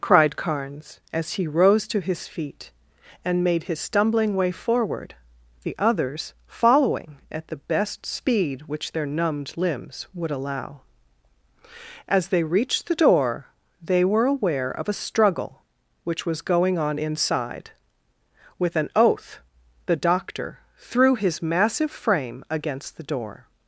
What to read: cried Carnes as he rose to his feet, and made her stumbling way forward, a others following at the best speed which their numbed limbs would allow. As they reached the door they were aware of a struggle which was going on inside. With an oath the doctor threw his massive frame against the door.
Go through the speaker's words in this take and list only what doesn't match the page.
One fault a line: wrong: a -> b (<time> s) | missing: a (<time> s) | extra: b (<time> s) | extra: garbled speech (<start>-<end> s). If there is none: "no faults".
wrong: her -> his (3.6 s)
wrong: a -> the (5.6 s)